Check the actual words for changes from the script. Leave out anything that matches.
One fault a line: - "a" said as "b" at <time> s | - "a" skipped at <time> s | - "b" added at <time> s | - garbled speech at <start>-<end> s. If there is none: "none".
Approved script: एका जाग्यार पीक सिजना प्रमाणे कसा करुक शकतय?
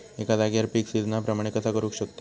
none